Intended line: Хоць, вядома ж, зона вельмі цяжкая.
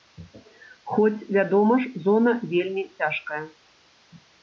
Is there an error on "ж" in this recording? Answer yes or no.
no